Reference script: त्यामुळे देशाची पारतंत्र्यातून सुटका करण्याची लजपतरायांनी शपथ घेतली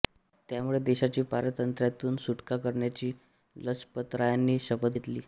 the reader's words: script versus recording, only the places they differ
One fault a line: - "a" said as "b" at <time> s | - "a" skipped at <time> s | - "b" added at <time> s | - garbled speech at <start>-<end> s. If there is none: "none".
none